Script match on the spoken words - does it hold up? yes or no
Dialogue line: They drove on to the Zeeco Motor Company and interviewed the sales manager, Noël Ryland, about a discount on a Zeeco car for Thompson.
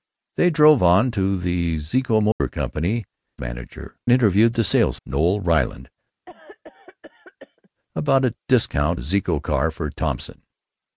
no